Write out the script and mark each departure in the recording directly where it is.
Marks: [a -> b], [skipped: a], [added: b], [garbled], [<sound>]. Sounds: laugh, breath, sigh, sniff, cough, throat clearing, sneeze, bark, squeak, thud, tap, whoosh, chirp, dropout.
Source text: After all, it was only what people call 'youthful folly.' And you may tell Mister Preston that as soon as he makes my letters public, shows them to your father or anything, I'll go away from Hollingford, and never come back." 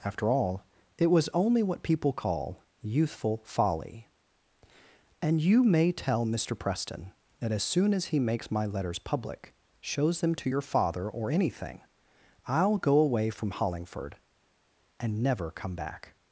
After all, it was only what people call 'youthful folly.' And you may tell Mister Preston that as soon as he makes my letters public, shows them to your father or anything, I'll go away from Hollingford, and never come back."